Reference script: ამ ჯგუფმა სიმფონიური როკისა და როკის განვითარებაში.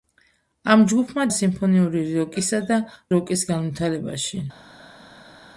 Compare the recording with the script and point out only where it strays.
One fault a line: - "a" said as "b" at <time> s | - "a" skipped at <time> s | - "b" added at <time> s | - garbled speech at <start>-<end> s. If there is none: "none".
none